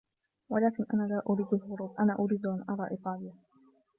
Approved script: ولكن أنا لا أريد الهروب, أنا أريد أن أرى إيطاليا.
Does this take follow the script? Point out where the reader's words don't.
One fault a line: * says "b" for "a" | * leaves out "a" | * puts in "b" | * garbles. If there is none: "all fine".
all fine